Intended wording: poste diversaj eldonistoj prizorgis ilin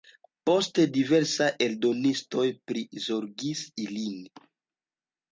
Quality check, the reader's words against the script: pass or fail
pass